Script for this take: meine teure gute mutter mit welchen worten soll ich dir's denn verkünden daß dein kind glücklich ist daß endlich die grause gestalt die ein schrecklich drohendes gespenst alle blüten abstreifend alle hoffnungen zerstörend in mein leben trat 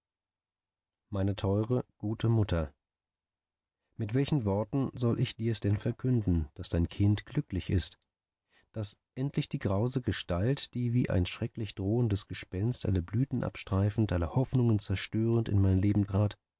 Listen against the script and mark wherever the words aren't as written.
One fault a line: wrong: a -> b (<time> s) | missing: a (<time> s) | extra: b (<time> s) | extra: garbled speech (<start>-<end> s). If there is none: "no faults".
extra: wie (10.9 s)